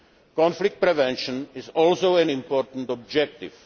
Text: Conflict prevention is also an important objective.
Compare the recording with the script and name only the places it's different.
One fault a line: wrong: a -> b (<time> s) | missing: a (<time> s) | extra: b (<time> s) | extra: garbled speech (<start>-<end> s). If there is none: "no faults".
no faults